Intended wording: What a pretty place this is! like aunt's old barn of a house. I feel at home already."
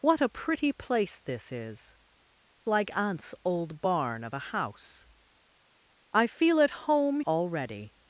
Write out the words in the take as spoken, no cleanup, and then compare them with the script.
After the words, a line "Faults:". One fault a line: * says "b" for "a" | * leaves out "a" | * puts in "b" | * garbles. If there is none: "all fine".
What a pretty place this is! like aunt's old barn of a house. I feel at home already."
Faults:
all fine